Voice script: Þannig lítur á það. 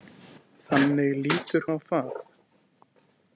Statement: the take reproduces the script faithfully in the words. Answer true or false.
true